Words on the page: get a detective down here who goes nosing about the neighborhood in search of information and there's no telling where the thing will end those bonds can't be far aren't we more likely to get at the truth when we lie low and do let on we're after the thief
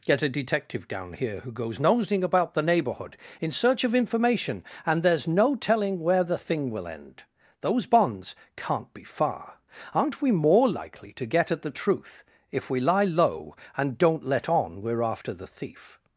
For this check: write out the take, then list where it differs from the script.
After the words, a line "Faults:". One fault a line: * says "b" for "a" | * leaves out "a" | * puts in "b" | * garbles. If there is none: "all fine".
get a detective down here who goes nosing about the neighborhood in search of information and there's no telling where the thing will end those bonds can't be far aren't we more likely to get at the truth if we lie low and don't let on we're after the thief
Faults:
* says "if" for "when"
* says "don't" for "do"